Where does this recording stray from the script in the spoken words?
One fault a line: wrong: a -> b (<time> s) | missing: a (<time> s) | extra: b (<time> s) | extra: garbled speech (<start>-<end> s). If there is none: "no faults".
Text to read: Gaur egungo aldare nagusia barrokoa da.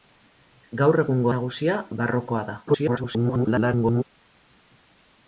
missing: aldare (1.3 s)
extra: garbled speech (2.7-4.0 s)